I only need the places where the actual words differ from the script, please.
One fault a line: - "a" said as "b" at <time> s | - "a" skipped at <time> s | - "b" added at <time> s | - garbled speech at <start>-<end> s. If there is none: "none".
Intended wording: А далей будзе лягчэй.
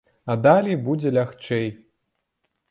none